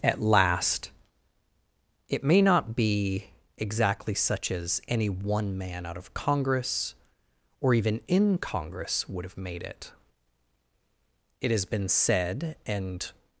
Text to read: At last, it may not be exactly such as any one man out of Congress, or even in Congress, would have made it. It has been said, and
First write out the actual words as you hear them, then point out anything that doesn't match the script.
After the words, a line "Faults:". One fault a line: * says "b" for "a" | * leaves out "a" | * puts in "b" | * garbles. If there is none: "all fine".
At last, it may not be exactly such as any one man out of Congress, or even in Congress, would have made it. It has been said, and
Faults:
all fine